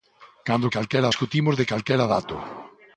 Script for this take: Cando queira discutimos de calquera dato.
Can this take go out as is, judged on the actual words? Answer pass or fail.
fail